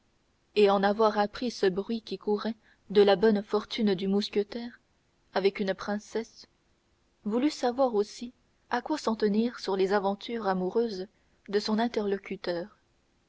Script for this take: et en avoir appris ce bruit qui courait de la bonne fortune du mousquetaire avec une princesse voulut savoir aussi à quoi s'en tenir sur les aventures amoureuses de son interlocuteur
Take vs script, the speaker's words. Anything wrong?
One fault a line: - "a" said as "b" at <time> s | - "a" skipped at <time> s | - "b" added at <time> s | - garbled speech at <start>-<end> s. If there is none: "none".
none